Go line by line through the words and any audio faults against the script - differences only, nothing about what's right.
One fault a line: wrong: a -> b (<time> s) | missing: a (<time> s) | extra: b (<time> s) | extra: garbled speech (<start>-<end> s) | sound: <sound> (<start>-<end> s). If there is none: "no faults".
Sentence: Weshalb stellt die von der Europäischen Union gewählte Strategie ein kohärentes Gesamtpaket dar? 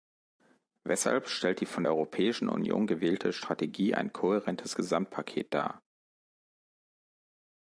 missing: der (1.9 s)